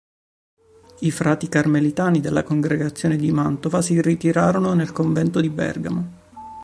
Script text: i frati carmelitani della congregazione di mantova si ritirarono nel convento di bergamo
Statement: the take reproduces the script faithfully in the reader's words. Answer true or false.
true